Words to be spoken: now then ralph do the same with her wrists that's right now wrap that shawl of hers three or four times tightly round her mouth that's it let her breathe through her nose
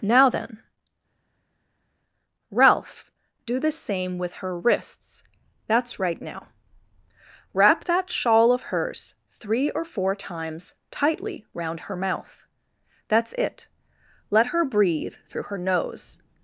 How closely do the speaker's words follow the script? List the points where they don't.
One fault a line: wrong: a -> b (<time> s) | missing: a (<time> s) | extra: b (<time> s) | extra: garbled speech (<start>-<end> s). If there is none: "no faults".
no faults